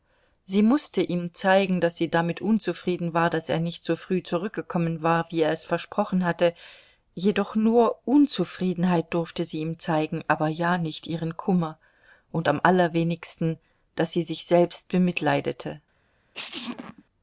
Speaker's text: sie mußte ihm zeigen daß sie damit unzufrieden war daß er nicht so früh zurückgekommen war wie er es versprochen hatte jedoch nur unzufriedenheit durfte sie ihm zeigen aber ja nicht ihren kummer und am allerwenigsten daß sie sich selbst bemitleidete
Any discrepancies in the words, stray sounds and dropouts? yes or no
yes